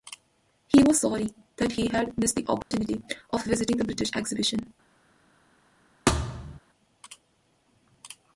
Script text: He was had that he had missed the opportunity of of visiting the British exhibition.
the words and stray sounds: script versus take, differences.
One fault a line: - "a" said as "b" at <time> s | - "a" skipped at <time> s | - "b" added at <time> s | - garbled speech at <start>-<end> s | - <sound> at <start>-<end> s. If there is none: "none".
- "had" said as "sorry" at 1.0 s
- dropout at 2.6-2.7 s
- "of" skipped at 3.4 s
- thud at 6.1-6.6 s